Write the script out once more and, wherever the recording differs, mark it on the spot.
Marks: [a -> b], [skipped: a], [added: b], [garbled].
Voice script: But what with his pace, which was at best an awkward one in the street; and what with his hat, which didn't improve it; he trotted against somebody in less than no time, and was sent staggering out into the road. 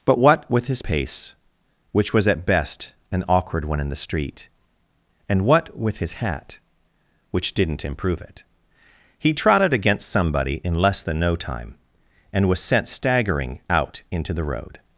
But what with his pace, which was at best an awkward one in the street; and what with his hat, which didn't improve it; he trotted against somebody in less than no time, and was sent staggering out into the road.